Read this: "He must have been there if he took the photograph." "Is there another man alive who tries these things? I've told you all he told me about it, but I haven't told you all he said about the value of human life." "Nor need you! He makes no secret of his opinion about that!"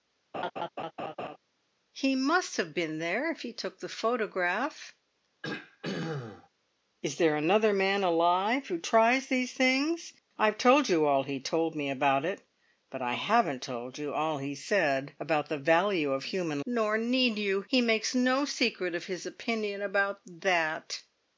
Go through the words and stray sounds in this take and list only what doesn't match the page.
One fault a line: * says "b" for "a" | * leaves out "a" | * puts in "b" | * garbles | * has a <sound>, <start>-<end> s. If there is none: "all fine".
* has a laugh, 0.3-1.4 s
* has a throat clearing, 5.4-6.5 s
* leaves out "life"